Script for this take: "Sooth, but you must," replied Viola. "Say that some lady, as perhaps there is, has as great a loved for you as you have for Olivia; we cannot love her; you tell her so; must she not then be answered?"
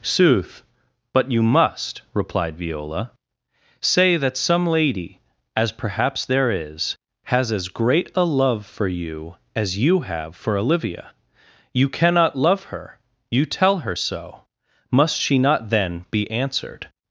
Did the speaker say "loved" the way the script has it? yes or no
no